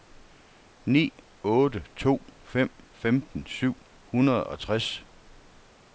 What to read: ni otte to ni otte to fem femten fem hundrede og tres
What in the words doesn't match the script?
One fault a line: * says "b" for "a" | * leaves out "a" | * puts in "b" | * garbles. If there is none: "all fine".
* leaves out "ni otte to"
* says "syv" for "fem"